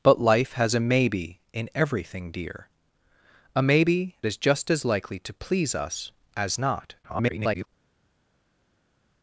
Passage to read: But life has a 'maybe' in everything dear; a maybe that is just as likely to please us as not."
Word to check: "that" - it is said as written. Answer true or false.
false